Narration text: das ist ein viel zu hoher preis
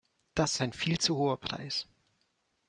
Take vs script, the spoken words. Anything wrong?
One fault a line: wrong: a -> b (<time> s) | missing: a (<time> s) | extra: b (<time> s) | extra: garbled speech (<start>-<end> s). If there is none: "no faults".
missing: ist (0.6 s)